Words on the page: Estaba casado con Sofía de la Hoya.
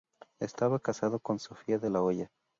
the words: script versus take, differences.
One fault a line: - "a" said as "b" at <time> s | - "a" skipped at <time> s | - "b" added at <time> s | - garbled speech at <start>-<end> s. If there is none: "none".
none